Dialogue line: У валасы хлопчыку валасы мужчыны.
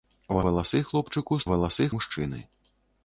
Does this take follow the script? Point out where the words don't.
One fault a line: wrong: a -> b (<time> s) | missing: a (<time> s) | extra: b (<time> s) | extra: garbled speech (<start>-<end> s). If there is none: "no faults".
no faults